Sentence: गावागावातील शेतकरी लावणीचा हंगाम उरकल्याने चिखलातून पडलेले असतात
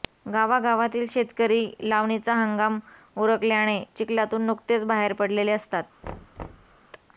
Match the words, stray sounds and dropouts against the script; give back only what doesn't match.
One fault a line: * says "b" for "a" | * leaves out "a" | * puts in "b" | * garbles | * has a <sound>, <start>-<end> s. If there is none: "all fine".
* puts in "नुकतेच बाहेर"
* has a thud, 6.0-6.8 s